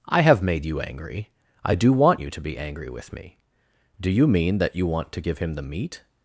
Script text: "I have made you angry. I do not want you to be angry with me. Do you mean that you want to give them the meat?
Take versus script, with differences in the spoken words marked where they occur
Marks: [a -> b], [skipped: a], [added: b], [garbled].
"I have made you angry. I do [skipped: not] want you to be angry with me. Do you mean that you want to give [them -> him] the meat?